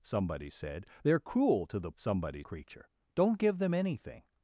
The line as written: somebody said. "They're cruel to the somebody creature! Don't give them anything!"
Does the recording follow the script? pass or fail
pass